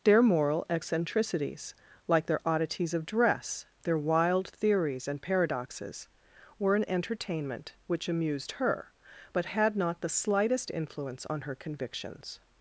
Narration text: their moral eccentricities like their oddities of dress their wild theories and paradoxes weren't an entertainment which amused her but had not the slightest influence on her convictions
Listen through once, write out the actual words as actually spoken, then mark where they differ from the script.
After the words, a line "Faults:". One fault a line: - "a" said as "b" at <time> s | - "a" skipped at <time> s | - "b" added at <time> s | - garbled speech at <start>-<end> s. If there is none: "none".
their moral eccentricities like their oddities of dress their wild theories and paradoxes were an entertainment which amused her but had not the slightest influence on her convictions
Faults:
- "weren't" said as "were" at 6.6 s